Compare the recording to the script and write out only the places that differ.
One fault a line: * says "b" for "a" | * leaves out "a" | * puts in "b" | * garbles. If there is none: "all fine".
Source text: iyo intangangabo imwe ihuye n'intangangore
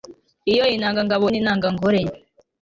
* leaves out "imwe ihuye"